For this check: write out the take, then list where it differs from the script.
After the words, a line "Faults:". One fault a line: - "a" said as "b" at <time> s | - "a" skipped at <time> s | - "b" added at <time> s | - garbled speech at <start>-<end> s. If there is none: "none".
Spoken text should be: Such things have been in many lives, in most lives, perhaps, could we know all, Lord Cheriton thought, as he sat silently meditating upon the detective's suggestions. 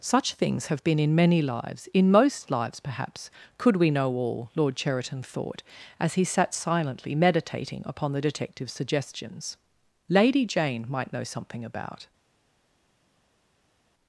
Such things have been in many lives, in most lives, perhaps, could we know all, Lord Cheriton thought, as he sat silently meditating upon the detective's suggestions. Lady Jane might know something about
Faults:
- "Lady Jane might know something about" added at 10.1 s